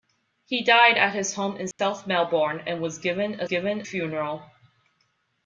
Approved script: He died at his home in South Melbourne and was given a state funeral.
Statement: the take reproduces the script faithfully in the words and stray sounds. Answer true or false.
false